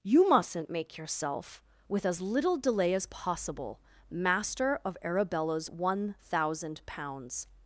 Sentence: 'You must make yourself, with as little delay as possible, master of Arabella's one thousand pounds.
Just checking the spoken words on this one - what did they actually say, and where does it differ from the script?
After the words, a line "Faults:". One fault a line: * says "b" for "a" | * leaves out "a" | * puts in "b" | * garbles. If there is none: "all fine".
'You mustn't make yourself, with as little delay as possible, master of Arabella's one thousand pounds.
Faults:
* says "mustn't" for "must"